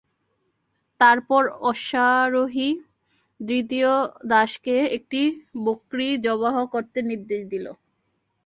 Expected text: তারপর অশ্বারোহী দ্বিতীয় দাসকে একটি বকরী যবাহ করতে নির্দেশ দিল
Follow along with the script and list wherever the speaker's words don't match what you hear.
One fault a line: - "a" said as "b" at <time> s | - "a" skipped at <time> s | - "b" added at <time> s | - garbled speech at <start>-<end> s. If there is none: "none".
none